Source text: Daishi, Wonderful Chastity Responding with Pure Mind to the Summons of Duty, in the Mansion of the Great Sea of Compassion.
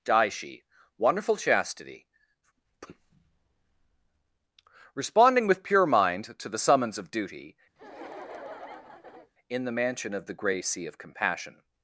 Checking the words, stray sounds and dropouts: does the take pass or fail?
fail